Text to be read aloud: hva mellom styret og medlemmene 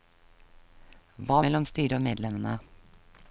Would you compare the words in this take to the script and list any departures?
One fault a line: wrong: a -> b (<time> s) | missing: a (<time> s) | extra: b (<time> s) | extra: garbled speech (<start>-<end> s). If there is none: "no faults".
no faults